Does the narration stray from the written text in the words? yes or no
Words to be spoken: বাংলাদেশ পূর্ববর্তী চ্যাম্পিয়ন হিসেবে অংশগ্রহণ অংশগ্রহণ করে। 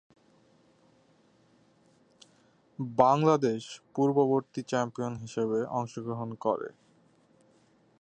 yes